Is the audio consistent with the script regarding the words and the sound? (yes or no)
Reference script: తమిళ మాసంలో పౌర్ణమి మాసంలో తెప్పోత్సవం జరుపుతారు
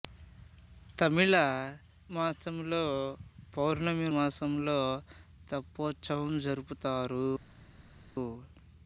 yes